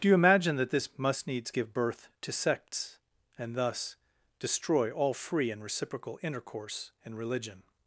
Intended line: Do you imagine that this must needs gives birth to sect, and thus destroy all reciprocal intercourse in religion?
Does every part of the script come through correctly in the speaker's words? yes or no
no